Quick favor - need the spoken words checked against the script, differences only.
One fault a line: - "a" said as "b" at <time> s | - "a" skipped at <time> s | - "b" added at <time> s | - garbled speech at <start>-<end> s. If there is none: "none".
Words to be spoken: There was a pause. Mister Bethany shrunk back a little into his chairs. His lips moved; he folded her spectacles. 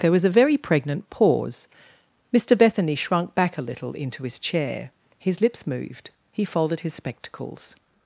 - "very pregnant" added at 0.3 s
- "chairs" said as "chair" at 4.4 s
- "her" said as "his" at 6.8 s